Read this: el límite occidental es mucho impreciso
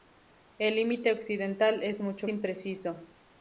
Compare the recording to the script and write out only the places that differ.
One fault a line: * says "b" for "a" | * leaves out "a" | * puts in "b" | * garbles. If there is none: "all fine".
all fine